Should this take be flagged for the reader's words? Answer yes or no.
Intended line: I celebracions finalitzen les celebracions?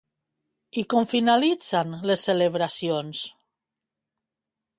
yes